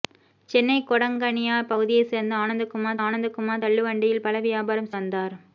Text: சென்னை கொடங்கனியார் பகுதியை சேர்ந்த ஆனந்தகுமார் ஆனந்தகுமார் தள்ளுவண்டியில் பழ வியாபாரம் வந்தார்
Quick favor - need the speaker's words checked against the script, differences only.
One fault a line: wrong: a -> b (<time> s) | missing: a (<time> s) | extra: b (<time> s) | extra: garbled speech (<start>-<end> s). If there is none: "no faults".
no faults